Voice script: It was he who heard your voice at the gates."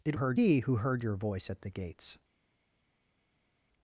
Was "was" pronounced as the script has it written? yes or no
no